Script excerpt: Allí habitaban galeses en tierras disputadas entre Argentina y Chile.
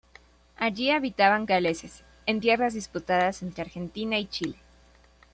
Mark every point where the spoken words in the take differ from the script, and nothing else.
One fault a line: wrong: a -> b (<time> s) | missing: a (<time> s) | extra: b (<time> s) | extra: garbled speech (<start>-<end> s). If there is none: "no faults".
no faults